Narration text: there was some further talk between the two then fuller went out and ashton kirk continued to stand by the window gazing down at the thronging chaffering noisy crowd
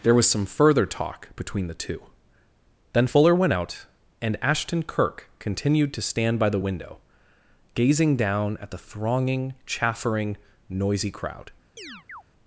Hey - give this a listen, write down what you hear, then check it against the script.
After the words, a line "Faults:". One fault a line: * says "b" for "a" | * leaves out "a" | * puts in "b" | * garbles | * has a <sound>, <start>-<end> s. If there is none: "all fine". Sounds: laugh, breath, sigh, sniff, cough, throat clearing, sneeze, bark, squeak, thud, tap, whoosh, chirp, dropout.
there was some further talk between the two then fuller went out and ashton kirk continued to stand by the window gazing down at the thronging chaffering noisy crowd
Faults:
* has a chirp, 11.8-12.2 s